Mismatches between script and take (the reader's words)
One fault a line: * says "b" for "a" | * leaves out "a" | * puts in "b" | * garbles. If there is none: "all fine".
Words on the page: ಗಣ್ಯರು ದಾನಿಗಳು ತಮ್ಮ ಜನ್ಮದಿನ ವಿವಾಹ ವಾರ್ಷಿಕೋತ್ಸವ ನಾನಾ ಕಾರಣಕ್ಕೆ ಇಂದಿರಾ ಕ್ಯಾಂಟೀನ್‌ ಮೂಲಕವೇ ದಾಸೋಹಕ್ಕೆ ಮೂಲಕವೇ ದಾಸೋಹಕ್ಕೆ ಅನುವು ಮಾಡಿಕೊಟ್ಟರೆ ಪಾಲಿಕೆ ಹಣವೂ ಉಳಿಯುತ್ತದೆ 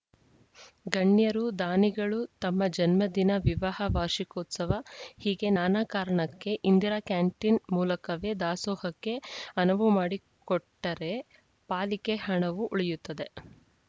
* puts in "ಹೀಗೆ"
* leaves out "ಮೂಲಕವೇ ದಾಸೋಹಕ್ಕೆ"